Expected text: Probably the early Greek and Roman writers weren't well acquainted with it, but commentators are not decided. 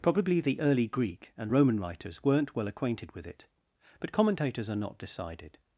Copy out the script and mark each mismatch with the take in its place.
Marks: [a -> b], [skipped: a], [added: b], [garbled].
Probably the early Greek and Roman writers weren't well acquainted with it, but commentators are not decided.